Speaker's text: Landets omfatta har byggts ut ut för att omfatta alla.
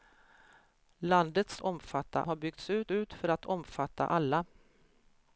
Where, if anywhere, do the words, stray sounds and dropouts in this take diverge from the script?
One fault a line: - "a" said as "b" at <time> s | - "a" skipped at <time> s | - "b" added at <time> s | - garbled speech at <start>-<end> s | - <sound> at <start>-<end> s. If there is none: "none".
none